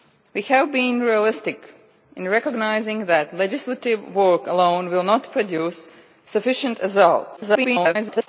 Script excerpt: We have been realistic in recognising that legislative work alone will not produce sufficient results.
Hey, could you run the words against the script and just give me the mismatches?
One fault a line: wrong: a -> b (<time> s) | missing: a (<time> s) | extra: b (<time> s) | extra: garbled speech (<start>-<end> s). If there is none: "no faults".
extra: garbled speech (7.4-8.3 s)